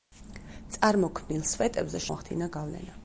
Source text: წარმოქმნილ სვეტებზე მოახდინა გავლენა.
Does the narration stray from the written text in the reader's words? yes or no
no